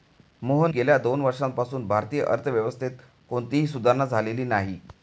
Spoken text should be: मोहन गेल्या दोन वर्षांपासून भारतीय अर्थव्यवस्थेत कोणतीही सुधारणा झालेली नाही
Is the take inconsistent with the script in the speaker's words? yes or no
no